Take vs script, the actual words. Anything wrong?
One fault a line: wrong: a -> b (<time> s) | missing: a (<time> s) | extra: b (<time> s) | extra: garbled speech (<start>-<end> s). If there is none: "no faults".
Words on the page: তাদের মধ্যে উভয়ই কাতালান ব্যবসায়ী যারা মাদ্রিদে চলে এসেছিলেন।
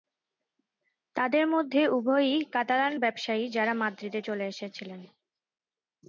no faults